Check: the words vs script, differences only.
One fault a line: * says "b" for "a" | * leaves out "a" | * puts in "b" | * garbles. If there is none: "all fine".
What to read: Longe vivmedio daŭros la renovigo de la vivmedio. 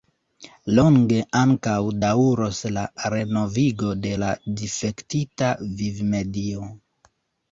* says "ankaŭ" for "vivmedio"
* puts in "difektita"